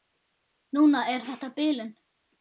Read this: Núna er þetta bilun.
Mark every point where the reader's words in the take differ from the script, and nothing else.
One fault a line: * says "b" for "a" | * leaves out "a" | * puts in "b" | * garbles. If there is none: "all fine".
all fine